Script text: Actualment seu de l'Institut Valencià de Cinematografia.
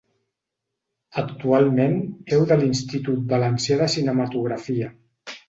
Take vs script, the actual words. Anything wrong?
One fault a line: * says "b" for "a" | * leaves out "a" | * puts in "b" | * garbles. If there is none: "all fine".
all fine